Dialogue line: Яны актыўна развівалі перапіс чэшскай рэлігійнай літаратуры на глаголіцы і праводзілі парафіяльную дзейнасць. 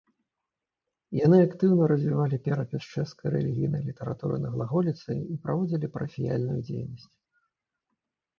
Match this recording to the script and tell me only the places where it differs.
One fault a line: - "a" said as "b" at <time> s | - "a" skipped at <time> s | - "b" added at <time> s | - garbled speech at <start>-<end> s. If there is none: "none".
none